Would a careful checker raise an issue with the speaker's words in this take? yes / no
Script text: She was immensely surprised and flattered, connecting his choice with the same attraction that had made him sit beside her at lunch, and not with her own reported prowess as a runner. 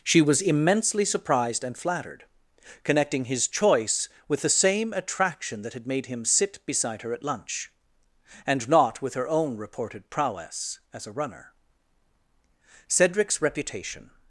yes